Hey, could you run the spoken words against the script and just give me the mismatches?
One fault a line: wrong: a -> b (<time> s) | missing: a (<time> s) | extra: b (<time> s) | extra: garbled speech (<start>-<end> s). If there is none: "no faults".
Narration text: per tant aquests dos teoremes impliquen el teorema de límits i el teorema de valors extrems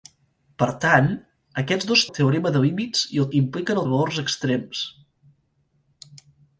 missing: teoremes impliquen (2.0 s)
wrong: teorema -> impliquen (3.4 s)